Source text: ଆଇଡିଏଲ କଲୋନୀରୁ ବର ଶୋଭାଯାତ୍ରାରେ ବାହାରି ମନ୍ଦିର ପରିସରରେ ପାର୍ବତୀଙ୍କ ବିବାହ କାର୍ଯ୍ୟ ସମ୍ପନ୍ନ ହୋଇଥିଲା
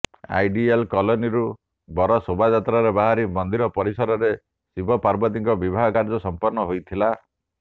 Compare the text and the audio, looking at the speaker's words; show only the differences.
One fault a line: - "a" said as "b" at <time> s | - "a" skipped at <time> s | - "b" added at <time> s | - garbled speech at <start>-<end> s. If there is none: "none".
- "ଶିବ" added at 4.3 s